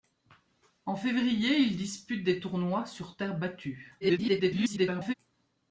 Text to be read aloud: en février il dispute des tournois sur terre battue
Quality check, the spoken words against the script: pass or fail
fail